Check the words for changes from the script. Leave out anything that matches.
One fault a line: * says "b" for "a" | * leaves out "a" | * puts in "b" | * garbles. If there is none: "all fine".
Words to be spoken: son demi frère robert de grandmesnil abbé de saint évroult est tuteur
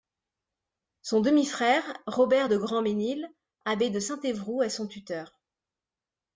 * puts in "son"